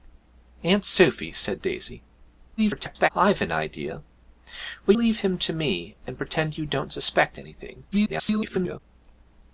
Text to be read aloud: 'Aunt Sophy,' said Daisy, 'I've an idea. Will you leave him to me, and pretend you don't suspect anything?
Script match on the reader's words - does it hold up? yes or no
no